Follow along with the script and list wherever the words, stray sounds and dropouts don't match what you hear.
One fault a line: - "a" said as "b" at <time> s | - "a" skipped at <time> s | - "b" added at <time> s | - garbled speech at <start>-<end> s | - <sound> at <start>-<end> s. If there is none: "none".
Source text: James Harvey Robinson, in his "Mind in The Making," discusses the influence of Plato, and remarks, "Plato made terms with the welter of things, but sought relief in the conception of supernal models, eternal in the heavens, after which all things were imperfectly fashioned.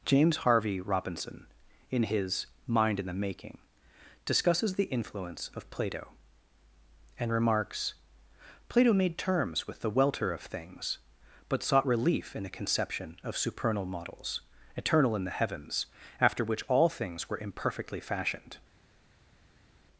none